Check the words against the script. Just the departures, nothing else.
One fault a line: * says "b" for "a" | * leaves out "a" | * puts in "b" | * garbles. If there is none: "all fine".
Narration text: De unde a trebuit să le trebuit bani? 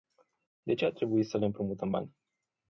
* says "ce" for "unde"
* says "împrumutăm" for "trebuit"